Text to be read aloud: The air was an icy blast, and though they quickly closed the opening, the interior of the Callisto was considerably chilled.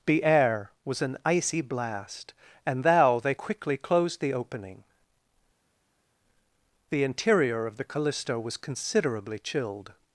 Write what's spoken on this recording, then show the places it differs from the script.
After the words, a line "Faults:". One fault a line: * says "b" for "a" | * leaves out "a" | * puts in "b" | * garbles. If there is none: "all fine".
The air was an icy blast, and thou they quickly closed the opening, the interior of the Callisto was considerably chilled.
Faults:
* says "thou" for "though"